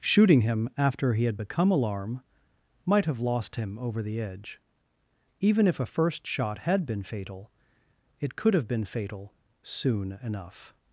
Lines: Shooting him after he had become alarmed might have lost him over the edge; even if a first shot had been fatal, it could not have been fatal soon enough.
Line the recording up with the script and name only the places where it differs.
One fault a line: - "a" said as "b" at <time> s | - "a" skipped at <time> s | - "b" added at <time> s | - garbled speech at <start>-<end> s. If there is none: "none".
- "alarmed" said as "alarm" at 1.7 s
- "not" skipped at 8.5 s